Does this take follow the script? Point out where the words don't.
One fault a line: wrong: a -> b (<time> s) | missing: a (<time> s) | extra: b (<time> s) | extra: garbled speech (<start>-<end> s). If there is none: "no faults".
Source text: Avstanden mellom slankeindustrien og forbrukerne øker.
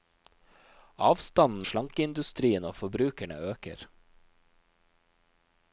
missing: mellom (1.6 s)